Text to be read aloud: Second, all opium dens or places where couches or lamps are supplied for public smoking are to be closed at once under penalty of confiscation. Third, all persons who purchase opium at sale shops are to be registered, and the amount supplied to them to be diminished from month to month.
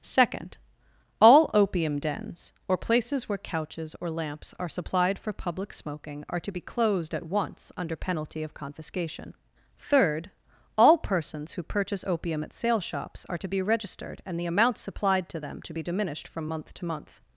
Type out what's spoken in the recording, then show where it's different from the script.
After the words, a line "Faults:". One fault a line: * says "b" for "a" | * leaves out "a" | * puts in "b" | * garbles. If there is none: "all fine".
Second, all opium dens or places where couches or lamps are supplied for public smoking are to be closed at once under penalty of confiscation. Third, all persons who purchase opium at sale shops are to be registered, and the amount supplied to them to be diminished from month to month.
Faults:
all fine